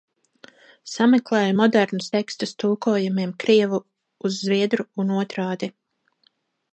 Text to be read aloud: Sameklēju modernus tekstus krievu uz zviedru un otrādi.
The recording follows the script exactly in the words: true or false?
false